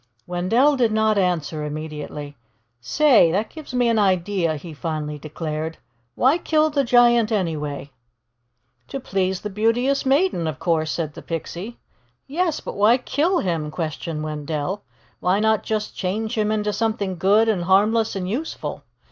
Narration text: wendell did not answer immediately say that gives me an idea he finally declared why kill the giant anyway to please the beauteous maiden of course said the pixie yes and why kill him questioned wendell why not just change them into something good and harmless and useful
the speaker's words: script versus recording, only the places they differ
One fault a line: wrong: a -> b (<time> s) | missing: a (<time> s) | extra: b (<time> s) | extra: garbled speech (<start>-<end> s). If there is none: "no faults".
wrong: and -> but (12.6 s)
wrong: them -> him (16.4 s)